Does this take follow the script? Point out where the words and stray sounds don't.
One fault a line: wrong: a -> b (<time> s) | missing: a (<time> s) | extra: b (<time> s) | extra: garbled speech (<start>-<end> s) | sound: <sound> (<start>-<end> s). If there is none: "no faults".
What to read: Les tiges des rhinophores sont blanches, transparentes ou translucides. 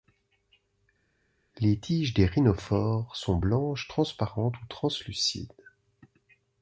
no faults